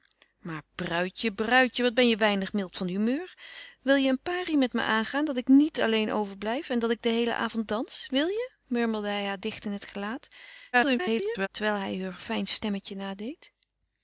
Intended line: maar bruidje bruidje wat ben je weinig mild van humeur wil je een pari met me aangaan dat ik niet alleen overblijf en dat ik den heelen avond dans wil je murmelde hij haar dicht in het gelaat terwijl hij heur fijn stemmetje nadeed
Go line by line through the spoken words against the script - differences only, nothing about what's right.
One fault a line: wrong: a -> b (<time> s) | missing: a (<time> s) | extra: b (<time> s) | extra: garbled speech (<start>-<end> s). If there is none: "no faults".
extra: garbled speech (10.7-11.5 s)